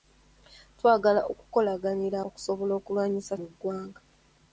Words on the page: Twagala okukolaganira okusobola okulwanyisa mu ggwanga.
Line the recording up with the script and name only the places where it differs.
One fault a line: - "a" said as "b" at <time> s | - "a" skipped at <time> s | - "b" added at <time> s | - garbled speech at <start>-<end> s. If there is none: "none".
none